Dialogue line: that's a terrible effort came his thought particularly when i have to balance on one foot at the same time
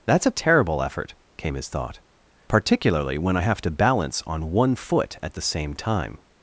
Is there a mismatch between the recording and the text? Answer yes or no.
no